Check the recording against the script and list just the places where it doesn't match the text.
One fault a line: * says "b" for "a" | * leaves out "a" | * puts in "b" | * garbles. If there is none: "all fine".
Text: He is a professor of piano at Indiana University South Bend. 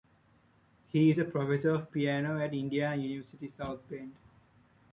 all fine